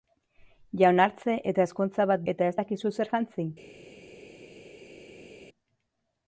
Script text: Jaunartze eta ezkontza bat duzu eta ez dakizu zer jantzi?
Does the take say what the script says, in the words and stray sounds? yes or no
no